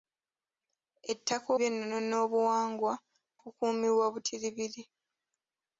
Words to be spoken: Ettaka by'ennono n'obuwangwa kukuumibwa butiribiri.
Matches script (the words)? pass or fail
pass